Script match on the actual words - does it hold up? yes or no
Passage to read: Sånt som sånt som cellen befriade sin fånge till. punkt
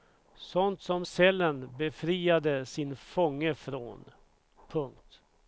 no